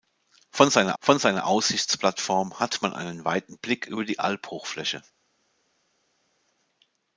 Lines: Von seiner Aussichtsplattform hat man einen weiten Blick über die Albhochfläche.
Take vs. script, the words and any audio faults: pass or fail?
fail